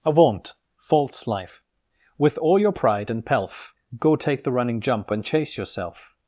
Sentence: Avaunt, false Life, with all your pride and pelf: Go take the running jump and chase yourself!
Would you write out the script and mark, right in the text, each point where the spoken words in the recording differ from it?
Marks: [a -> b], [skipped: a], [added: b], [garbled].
Avaunt, false Life, with all your pride and pelf: Go take the running jump and chase yourself!